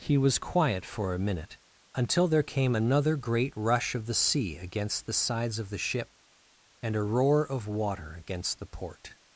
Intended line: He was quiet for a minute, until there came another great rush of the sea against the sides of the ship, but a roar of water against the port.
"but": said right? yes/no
no